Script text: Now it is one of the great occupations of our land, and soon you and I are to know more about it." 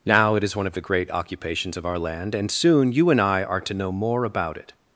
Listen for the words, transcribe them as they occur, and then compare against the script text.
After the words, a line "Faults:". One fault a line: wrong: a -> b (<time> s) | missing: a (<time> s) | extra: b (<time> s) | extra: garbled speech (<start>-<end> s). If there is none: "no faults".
Now it is one of the great occupations of our land, and soon you and I are to know more about it."
Faults:
no faults